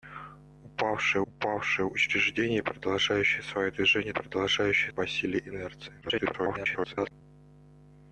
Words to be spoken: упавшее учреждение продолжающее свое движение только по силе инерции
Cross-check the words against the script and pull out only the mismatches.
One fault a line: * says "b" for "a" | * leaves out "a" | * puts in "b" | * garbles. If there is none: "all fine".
* puts in "упавшее"
* says "продолжающее" for "только"
* garbles